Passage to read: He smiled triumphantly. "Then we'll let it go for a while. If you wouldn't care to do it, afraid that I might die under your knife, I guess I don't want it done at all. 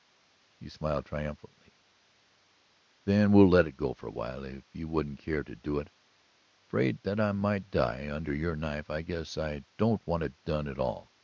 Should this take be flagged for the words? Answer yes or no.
no